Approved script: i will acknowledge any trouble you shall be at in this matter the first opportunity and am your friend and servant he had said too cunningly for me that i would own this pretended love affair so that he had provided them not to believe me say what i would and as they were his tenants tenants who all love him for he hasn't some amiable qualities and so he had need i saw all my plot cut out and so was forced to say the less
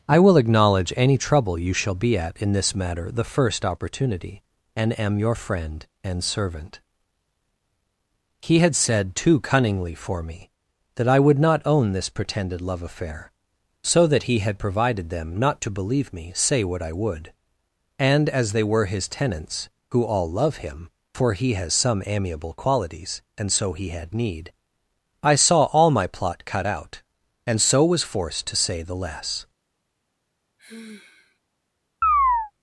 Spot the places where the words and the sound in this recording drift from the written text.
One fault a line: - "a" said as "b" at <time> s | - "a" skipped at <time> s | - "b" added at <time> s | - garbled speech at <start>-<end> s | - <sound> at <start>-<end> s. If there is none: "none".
- "not" added at 11.4 s
- "tenants" skipped at 19.7 s
- "hasn't" said as "has" at 21.6 s
- sigh at 30.6-31.4 s
- chirp at 32.0-32.5 s